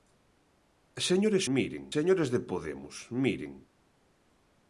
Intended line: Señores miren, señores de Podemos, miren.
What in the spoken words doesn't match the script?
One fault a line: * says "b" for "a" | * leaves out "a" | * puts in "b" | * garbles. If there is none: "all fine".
all fine